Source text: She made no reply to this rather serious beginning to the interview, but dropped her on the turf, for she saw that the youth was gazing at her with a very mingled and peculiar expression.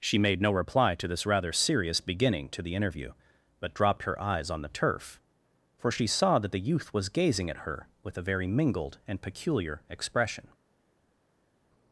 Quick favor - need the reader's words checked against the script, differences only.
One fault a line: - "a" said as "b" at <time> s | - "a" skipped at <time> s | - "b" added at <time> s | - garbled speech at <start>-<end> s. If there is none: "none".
- "eyes" added at 4.2 s